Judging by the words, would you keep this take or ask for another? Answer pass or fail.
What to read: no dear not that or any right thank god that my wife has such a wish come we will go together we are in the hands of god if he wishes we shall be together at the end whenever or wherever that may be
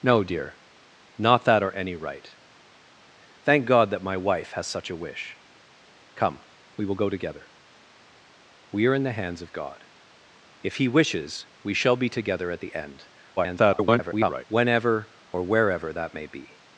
fail